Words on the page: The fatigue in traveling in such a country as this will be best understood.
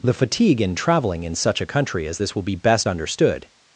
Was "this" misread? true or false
false